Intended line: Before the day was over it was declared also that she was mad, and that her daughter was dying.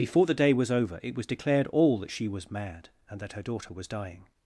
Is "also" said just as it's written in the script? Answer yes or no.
no